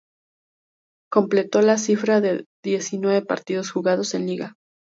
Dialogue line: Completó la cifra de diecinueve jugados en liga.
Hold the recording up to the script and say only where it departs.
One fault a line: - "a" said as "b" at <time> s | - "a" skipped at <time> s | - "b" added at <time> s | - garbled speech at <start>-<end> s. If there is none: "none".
- "partidos" added at 3.2 s